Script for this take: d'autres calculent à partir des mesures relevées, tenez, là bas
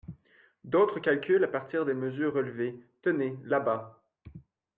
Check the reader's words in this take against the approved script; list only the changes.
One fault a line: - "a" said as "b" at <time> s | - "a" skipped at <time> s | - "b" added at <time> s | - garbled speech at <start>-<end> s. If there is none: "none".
none